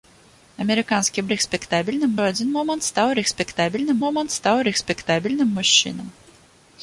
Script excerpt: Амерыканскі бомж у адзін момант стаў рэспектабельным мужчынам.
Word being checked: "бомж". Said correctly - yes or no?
no